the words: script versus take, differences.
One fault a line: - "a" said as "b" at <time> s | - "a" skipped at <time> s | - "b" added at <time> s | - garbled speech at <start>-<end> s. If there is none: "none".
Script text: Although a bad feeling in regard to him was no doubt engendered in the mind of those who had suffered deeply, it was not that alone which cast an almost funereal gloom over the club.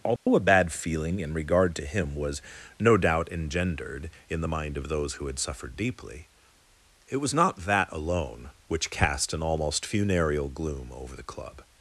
none